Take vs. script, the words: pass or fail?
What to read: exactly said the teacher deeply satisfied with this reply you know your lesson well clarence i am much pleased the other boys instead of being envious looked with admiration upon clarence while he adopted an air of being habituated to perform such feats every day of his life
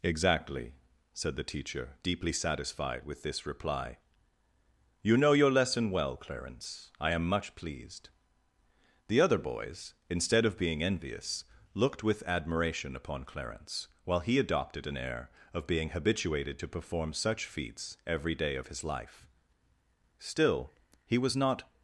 fail